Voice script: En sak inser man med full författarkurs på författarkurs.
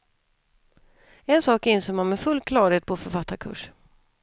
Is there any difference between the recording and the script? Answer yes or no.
yes